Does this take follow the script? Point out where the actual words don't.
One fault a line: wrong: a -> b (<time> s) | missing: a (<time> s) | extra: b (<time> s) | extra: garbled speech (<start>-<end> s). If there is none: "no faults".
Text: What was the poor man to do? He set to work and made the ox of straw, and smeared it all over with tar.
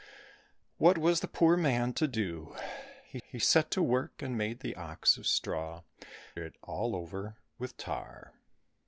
extra: he (3.2 s)
missing: and smeared (5.8 s)